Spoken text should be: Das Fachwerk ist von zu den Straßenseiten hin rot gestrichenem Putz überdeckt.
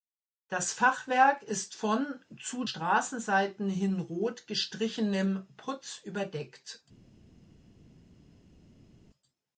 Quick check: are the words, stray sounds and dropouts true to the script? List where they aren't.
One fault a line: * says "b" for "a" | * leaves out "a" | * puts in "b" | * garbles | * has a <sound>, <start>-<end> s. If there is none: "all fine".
* leaves out "den"